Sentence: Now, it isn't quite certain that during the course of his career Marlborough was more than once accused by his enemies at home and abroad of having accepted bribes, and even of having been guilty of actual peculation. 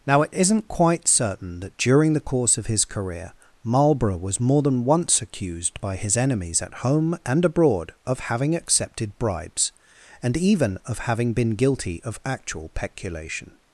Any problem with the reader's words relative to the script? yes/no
no